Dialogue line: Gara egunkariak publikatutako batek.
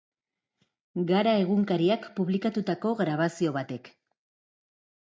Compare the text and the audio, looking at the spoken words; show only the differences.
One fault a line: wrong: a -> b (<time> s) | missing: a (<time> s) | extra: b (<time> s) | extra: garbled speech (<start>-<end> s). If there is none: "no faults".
extra: grabazio (3.0 s)